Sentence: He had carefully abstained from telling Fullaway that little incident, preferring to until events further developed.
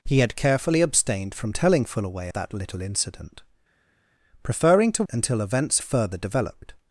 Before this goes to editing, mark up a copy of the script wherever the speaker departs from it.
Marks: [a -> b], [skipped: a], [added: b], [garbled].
He had carefully abstained from telling Fullaway that little incident, preferring to until events further developed.